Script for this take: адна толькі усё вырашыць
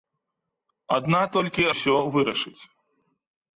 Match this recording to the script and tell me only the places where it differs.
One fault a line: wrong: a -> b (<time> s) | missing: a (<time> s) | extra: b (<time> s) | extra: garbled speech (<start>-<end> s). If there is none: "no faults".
no faults